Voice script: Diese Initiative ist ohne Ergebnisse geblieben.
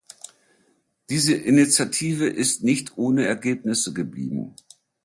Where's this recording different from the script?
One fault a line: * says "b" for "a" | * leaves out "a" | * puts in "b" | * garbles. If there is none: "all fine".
* puts in "nicht"